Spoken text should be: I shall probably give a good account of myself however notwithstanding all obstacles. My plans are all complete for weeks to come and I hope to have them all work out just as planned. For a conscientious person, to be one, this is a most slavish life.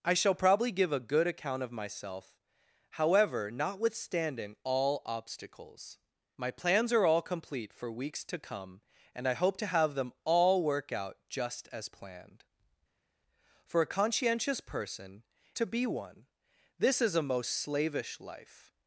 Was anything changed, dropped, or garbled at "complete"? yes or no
no